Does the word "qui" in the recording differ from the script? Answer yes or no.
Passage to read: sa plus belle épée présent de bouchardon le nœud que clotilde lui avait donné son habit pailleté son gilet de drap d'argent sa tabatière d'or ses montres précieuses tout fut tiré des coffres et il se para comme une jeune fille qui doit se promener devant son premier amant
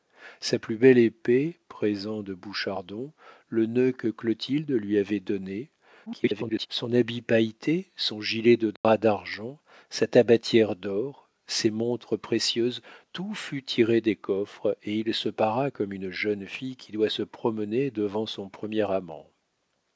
no